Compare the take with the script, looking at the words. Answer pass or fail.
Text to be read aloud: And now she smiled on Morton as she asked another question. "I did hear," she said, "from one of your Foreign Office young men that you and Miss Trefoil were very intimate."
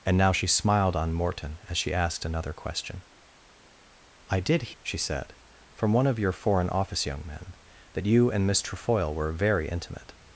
fail